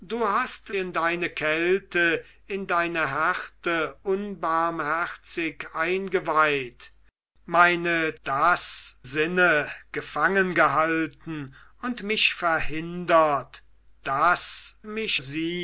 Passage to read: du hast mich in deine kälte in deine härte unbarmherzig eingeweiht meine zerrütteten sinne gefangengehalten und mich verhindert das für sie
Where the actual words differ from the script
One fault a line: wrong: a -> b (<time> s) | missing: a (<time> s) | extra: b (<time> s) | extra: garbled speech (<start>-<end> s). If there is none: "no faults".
missing: mich (0.7 s)
wrong: zerrütteten -> das (8.2 s)
wrong: für -> mich (14.8 s)